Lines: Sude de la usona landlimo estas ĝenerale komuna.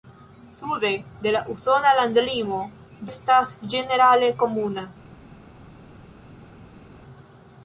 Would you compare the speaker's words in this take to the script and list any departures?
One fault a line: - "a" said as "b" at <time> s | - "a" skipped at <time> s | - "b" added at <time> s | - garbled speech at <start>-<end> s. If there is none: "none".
none